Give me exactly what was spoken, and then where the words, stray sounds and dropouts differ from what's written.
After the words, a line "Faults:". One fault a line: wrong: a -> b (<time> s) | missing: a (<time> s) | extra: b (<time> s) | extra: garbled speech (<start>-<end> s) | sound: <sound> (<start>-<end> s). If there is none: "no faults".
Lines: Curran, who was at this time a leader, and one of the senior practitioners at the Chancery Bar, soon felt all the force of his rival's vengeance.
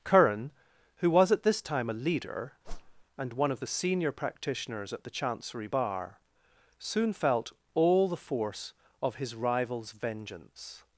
Curran, who was at this time a leader, and one of the senior practitioners at the Chancery Bar, soon felt all the force of his rival's vengeance.
Faults:
sound: whoosh (2.6-3.0 s)